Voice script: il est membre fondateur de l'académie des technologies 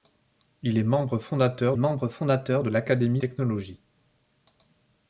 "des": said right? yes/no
no